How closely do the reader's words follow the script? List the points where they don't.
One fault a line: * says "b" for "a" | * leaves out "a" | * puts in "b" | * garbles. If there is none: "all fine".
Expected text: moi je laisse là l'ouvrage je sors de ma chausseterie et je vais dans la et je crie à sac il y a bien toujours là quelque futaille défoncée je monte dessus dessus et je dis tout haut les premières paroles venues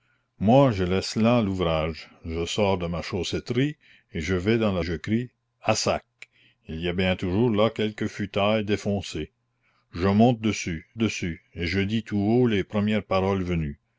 all fine